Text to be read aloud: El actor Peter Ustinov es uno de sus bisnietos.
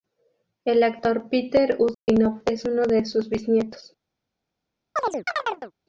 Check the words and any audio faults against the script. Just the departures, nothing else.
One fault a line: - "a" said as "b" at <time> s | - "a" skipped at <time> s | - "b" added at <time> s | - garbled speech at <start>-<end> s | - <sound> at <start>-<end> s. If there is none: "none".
- dropout at 1.9-2.1 s
- chirp at 5.0-5.7 s